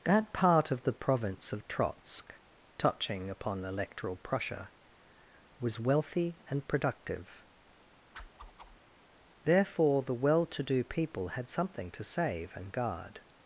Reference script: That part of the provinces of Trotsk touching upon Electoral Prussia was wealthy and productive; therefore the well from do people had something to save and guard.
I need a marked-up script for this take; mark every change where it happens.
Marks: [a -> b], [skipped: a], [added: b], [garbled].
That part of the [provinces -> province] of Trotsk touching upon Electoral Prussia was wealthy and productive; therefore the well [from -> to] do people had something to save and guard.